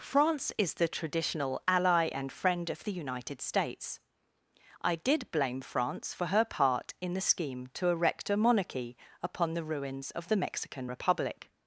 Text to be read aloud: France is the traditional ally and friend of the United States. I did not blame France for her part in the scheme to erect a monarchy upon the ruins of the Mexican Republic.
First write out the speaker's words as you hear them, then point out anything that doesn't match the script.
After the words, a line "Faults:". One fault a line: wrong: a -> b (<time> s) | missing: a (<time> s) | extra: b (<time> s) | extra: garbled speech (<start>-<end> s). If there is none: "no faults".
France is the traditional ally and friend of the United States. I did blame France for her part in the scheme to erect a monarchy upon the ruins of the Mexican Republic.
Faults:
missing: not (5.3 s)